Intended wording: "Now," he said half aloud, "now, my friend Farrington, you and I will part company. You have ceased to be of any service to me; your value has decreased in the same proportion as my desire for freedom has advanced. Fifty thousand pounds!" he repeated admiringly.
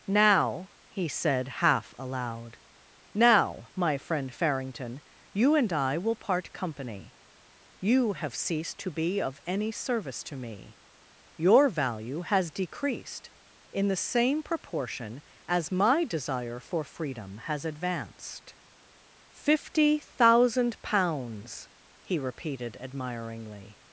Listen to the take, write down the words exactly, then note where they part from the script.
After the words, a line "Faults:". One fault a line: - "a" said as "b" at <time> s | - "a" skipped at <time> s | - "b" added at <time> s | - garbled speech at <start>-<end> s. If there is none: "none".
"Now," he said half aloud, "now, my friend Farrington, you and I will part company. You have ceased to be of any service to me; your value has decreased in the same proportion as my desire for freedom has advanced. Fifty thousand pounds!" he repeated admiringly.
Faults:
none